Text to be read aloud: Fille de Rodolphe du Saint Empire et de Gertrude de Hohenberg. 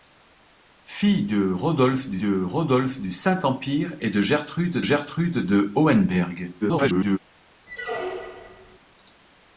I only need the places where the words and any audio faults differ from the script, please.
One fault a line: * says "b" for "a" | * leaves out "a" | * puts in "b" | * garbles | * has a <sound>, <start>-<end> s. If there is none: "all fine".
* puts in "de Rodolphe du"
* puts in "Gertrude"
* garbles
* has a squeak, 7.7-8.8 s